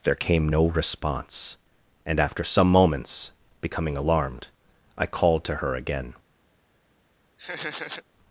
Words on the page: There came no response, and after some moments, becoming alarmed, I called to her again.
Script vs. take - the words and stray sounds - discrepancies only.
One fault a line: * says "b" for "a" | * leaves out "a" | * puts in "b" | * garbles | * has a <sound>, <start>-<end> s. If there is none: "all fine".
* has a laugh, 7.4-8.0 s